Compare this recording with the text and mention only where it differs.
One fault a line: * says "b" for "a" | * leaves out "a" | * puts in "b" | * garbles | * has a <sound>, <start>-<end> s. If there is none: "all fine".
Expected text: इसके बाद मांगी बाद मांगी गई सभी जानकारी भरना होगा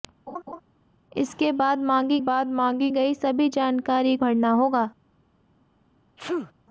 * has a laugh, 0.3-0.6 s
* has a sneeze, 6.2-6.5 s